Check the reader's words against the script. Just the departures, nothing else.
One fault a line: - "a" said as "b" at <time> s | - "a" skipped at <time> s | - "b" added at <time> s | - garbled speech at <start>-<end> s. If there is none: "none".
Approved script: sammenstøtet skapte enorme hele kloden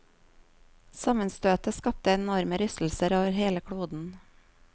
- "rystelser over" added at 2.6 s